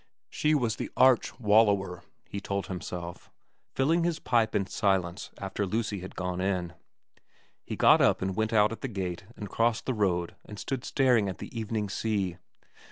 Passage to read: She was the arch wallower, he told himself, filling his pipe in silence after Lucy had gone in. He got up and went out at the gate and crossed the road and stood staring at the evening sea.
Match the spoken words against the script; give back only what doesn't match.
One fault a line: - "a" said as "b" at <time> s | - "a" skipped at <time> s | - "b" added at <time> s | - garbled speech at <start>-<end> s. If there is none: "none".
none